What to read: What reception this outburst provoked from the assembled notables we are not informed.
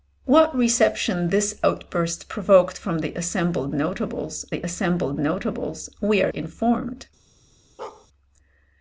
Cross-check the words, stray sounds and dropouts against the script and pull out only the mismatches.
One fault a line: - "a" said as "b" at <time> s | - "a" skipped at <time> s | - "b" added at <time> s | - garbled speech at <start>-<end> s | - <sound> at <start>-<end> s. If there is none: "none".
- "the assembled notables" added at 4.5 s
- "not" skipped at 6.3 s
- bark at 7.8-8.1 s